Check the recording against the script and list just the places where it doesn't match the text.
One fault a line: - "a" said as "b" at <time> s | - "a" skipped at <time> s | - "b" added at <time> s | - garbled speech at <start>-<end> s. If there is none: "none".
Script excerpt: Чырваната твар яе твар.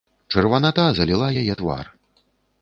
- "твар" said as "заліла" at 1.0 s